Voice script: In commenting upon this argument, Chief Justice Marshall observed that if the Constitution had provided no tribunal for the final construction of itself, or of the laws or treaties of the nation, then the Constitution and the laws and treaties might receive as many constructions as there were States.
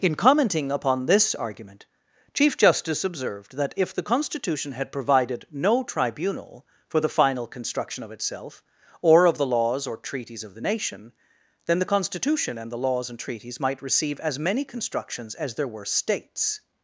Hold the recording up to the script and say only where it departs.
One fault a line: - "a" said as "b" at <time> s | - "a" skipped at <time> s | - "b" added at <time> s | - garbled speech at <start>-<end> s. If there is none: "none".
- "Marshall" skipped at 3.0 s